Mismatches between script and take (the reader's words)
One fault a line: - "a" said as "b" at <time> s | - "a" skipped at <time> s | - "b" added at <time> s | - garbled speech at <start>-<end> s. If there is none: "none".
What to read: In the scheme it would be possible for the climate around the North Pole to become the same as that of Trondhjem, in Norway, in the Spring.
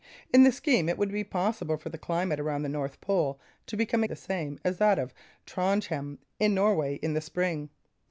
none